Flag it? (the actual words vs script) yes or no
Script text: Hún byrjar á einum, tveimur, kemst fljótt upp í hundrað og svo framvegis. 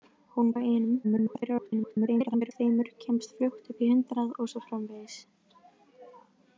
yes